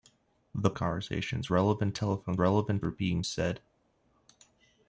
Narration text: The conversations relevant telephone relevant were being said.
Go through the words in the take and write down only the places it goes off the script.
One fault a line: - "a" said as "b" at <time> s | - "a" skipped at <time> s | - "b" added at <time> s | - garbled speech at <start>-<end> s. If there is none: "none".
none